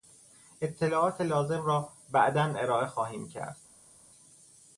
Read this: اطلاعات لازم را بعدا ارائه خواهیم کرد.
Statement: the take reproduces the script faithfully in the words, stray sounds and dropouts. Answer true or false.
true